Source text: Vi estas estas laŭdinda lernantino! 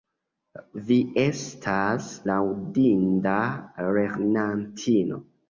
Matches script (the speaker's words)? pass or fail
fail